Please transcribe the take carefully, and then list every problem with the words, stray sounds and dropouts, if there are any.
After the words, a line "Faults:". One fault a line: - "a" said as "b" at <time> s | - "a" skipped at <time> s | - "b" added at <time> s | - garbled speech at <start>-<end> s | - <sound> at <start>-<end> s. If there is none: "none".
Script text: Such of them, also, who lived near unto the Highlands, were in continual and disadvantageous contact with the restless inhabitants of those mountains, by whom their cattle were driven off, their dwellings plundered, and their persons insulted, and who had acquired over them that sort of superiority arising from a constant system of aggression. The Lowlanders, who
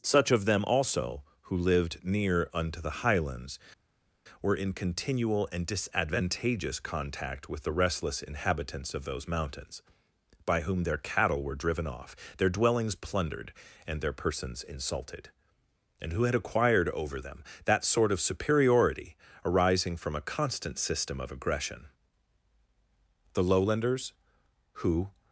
Such of them, also, who lived near unto the Highlands, were in continual and disadvantageous contact with the restless inhabitants of those mountains, by whom their cattle were driven off, their dwellings plundered, and their persons insulted, and who had acquired over them that sort of superiority arising from a constant system of aggression. The Lowlanders, who
Faults:
none